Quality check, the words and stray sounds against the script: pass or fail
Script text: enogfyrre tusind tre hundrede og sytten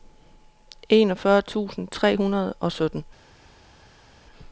pass